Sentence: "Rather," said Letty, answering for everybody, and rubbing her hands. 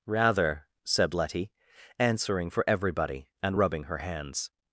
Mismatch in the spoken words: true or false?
false